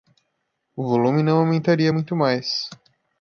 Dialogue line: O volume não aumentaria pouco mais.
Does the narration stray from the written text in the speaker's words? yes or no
yes